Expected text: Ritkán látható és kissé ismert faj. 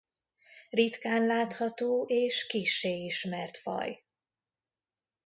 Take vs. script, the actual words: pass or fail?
pass